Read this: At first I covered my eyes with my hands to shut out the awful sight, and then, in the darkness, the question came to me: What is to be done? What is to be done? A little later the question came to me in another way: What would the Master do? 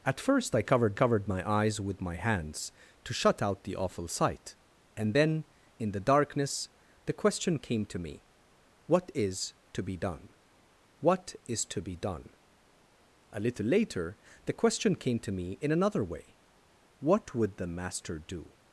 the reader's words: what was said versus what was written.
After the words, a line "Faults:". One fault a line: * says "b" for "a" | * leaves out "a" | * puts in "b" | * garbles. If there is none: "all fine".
At first I covered covered my eyes with my hands to shut out the awful sight, and then, in the darkness, the question came to me: What is to be done? What is to be done? A little later the question came to me in another way: What would the Master do?
Faults:
* puts in "covered"